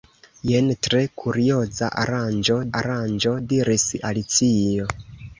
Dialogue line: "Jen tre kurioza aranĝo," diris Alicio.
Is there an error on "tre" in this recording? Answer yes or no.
no